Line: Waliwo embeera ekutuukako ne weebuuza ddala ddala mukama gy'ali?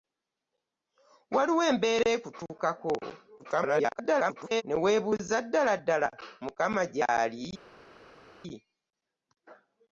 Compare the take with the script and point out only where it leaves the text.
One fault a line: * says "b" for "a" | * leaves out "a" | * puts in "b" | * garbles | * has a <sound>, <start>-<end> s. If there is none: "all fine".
* garbles